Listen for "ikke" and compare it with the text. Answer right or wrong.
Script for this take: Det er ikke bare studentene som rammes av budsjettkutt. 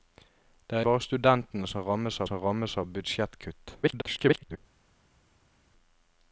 wrong